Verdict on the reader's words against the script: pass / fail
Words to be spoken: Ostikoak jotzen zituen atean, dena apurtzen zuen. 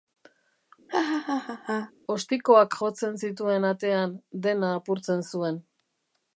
pass